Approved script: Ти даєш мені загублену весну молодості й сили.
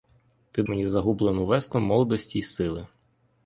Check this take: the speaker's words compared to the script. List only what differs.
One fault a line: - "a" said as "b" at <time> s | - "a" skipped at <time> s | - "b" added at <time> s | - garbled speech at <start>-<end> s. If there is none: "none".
- "даєш" skipped at 0.6 s